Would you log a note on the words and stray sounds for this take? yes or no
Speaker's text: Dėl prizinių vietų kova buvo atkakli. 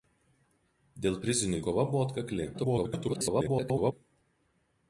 yes